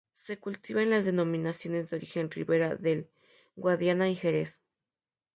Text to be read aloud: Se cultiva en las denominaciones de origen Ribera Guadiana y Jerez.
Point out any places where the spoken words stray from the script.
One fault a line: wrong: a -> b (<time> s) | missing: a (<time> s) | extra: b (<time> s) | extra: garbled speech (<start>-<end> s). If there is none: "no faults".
extra: del (2.8 s)